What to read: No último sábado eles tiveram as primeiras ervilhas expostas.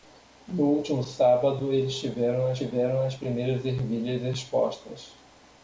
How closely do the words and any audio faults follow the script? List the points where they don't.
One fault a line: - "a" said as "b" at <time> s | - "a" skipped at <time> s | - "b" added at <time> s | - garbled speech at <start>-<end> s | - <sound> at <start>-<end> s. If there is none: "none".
- "tiveram as" added at 2.6 s